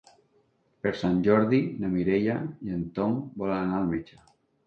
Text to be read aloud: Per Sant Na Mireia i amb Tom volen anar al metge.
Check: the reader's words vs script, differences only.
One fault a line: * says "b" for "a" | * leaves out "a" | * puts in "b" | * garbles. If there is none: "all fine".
* puts in "Jordi"
* says "en" for "amb"